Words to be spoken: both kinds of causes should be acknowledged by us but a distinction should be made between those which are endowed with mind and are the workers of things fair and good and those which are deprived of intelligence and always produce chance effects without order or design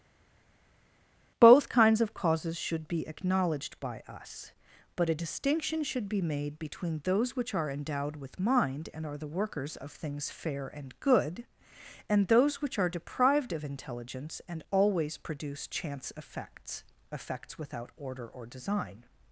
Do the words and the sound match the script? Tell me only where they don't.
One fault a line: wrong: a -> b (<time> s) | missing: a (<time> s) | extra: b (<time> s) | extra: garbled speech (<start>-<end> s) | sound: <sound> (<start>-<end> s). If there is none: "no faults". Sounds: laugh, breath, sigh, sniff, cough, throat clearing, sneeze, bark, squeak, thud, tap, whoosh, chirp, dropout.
extra: effects (17.1 s)